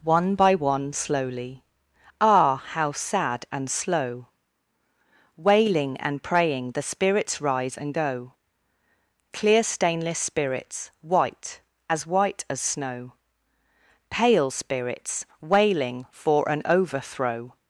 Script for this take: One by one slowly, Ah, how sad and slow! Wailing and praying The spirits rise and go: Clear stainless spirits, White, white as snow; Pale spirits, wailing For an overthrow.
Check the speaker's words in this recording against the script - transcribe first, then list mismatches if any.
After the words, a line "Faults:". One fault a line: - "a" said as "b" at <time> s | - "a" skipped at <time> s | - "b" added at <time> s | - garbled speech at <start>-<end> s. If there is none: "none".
One by one slowly, Ah, how sad and slow! Wailing and praying The spirits rise and go: Clear stainless spirits, White, as white as snow; Pale spirits, wailing For an overthrow.
Faults:
- "as" added at 11.9 s